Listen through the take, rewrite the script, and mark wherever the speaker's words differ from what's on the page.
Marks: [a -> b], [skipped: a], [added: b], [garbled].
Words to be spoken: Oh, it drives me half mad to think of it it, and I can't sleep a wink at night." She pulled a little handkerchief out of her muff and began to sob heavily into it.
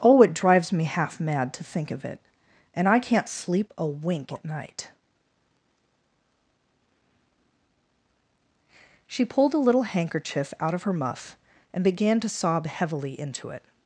Oh, it drives me half mad to think of it [skipped: it,] and I can't sleep a wink at night." She pulled a little handkerchief out of her muff and began to sob heavily into it.